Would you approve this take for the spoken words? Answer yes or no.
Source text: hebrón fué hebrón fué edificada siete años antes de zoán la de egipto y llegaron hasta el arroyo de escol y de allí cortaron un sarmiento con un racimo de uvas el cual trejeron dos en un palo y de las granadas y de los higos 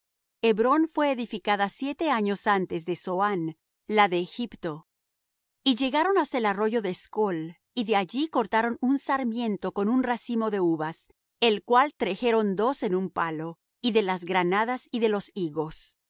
no